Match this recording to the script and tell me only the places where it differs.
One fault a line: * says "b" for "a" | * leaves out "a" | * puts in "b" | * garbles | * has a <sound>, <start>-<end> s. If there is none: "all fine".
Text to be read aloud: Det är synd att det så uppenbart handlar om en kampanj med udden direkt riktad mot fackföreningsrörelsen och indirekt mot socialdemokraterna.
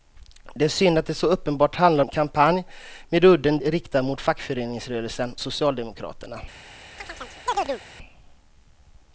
* leaves out "om"
* leaves out "direkt"
* leaves out "och indirekt mot"
* has a chirp, 7.0-7.8 s